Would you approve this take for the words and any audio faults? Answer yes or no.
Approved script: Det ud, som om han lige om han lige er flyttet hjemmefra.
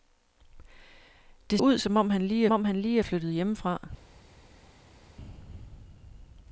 yes